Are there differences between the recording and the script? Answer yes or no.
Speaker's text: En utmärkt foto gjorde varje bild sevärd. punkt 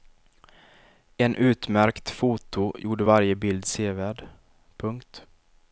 no